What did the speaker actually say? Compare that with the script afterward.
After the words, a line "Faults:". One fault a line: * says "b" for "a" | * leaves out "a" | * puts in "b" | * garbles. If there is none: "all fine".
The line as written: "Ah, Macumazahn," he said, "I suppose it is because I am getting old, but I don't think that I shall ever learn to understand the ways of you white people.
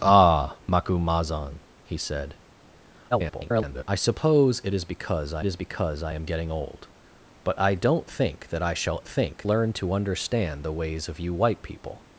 "Ah, Macumazahn," he said, [garbled] "I suppose it is because I is because I am getting old, but I don't think that I shall think learn to understand the ways of you white people.
Faults:
* garbles
* puts in "is because I"
* says "think" for "ever"